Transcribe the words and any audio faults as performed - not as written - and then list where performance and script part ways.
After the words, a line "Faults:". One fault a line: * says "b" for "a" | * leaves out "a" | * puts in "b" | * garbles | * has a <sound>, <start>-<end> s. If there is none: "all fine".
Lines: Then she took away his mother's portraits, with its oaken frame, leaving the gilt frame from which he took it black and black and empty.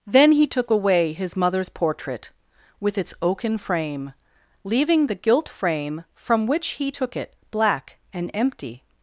Then he took away his mother's portrait, with its oaken frame, leaving the gilt frame from which he took it black and empty.
Faults:
* says "he" for "she"
* says "portrait" for "portraits"
* leaves out "black and"